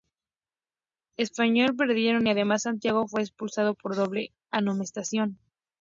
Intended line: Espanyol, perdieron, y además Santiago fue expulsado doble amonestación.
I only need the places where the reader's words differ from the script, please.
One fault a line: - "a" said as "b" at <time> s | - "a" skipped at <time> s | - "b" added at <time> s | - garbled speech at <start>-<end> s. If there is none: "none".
- "por" added at 3.7 s